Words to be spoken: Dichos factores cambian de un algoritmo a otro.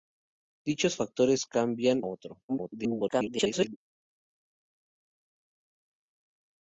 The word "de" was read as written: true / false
false